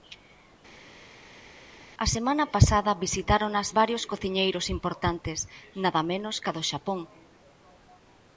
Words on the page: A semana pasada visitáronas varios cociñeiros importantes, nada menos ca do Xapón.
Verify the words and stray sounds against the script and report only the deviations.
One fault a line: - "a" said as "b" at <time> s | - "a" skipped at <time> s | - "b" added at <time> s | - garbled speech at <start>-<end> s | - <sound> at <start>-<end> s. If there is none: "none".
none